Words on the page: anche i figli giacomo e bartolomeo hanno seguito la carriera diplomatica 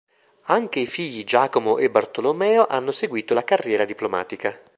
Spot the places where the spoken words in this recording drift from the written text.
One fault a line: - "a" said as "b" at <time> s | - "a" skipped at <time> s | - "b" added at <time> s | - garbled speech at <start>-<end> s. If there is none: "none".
none